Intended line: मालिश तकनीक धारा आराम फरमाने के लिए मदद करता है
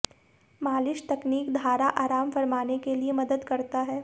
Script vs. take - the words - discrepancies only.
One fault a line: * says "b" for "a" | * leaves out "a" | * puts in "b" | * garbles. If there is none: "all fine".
all fine